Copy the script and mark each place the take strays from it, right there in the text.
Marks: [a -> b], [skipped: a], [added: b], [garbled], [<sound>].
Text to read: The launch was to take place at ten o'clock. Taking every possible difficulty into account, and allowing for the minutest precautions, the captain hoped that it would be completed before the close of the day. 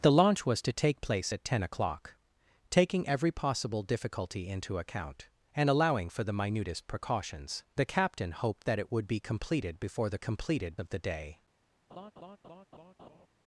The launch was to take place at ten o'clock. Taking every possible difficulty into account, and allowing for the minutest precautions, the captain hoped that it would be completed before the [close -> completed] of the day. [laugh]